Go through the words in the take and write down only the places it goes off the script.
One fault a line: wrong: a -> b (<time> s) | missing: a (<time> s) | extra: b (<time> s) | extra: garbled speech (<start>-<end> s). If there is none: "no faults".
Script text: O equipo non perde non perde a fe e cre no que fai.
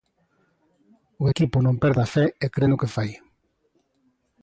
missing: non perde (2.0 s)